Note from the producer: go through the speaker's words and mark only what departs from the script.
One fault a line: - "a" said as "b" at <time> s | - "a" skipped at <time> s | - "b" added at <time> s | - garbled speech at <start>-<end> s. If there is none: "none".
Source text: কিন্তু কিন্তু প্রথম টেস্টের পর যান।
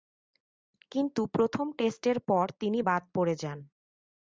- "কিন্তু" skipped at 1.2 s
- "তিনি বাদ পড়ে" added at 2.6 s